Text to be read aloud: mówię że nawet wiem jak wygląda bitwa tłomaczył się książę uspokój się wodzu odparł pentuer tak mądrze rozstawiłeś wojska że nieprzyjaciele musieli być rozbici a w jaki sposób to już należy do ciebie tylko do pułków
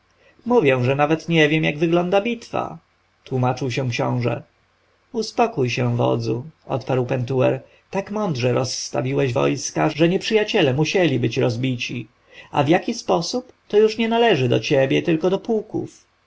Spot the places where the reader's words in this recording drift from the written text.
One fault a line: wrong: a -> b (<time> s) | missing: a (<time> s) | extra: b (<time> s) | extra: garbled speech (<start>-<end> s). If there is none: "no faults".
extra: nie (1.3 s)
extra: nie (14.0 s)